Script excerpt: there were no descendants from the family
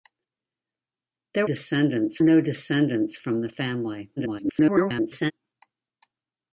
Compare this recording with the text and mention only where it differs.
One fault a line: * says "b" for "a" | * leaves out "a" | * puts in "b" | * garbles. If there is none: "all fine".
* says "descendants" for "were"
* garbles